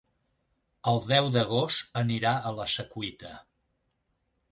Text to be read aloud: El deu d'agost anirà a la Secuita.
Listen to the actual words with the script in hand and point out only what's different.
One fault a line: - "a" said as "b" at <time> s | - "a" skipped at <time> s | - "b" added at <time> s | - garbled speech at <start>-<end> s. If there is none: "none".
none